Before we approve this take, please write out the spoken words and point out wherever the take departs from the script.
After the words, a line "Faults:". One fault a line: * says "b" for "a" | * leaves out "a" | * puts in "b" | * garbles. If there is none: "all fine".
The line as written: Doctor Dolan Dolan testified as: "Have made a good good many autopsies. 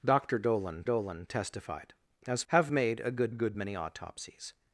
Doctor Dolan Dolan testified as: "Have made a good good many autopsies.
Faults:
all fine